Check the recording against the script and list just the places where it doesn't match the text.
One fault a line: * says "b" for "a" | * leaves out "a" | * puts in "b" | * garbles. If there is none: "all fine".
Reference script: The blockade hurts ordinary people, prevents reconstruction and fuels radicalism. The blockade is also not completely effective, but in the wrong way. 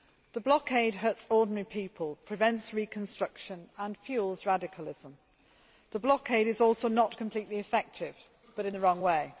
all fine